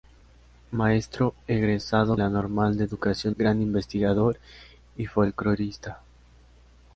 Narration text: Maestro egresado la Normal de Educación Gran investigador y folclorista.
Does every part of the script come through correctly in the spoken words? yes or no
yes